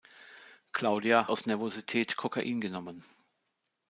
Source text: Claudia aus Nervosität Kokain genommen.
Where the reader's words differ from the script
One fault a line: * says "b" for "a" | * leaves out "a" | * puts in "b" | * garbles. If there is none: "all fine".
all fine